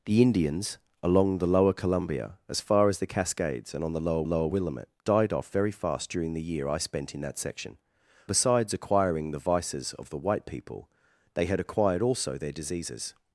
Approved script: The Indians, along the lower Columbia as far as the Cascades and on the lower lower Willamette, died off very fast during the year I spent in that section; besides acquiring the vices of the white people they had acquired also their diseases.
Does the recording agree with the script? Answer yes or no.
yes